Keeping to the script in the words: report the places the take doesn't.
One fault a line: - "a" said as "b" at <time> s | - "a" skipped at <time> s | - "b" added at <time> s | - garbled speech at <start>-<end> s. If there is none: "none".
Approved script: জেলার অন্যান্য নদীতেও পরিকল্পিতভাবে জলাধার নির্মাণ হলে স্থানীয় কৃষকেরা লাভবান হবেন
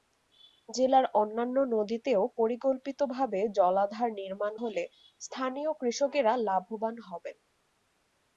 none